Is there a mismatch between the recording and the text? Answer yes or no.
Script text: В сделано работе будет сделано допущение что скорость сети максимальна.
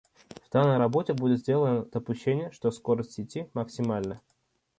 yes